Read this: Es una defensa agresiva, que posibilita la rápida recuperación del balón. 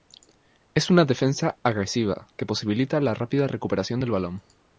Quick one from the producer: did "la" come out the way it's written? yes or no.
yes